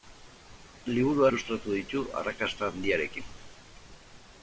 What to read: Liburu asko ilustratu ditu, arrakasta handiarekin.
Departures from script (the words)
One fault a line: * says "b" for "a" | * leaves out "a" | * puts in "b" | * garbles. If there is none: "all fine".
* leaves out "asko"